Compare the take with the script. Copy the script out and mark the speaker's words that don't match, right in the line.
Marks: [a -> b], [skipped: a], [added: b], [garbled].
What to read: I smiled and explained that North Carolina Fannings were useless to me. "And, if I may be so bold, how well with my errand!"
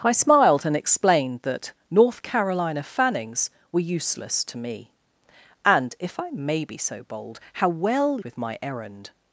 I smiled and explained that North Carolina Fannings were useless to me. "And, if I may be so bold, how well with my errand!"